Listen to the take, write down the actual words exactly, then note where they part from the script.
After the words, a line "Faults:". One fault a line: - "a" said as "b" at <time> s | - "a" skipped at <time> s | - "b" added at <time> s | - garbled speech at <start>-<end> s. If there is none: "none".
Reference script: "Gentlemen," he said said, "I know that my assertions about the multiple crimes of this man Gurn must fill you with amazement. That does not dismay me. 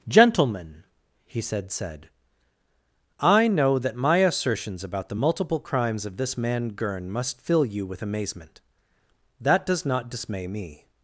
"Gentlemen," he said said, "I know that my assertions about the multiple crimes of this man Gurn must fill you with amazement. That does not dismay me.
Faults:
none